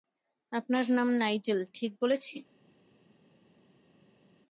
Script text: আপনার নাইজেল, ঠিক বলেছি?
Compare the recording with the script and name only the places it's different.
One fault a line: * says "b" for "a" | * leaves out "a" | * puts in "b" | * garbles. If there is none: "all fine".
* puts in "নাম"